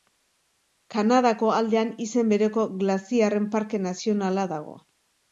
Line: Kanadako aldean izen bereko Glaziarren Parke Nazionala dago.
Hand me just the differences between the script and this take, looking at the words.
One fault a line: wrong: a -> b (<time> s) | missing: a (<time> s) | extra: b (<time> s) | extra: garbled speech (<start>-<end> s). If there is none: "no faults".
no faults